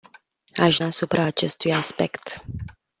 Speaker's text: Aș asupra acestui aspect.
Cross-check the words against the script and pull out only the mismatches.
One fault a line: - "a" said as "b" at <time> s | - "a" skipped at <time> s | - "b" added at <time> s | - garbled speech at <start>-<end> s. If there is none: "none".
none